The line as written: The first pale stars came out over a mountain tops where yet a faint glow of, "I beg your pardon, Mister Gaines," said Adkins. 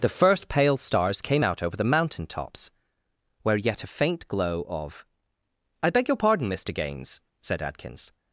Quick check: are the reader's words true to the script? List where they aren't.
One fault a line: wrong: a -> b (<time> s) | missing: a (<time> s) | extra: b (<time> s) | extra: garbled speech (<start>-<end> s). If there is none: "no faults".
wrong: a -> the (1.7 s)